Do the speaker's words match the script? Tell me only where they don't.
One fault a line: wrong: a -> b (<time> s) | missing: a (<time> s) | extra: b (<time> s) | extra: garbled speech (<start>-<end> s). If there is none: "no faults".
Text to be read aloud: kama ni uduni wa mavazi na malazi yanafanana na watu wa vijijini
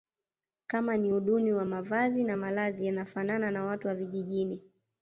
no faults